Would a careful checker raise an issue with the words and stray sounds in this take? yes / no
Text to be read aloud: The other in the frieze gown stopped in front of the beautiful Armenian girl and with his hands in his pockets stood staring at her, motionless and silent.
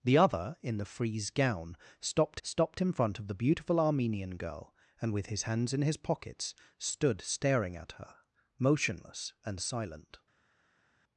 yes